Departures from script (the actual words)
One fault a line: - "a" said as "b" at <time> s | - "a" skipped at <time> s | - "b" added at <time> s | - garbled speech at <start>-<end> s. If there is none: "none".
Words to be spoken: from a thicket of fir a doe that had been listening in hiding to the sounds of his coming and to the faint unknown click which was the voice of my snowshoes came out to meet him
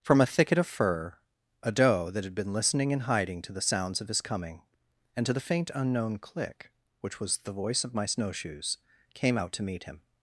none